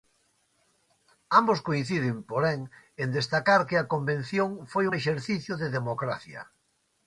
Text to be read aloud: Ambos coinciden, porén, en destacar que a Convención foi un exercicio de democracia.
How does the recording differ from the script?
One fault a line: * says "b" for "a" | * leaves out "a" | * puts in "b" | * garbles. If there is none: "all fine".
all fine